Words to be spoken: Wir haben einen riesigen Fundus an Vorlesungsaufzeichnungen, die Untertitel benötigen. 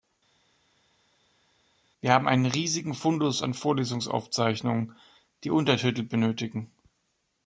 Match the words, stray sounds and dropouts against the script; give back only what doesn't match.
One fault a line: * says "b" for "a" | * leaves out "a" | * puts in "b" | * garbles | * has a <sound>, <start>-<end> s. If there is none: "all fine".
all fine